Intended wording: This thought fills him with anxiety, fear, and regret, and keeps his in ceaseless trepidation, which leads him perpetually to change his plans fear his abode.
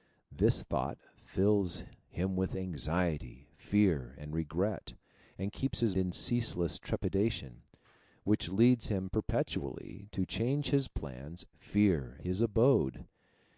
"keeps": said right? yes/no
yes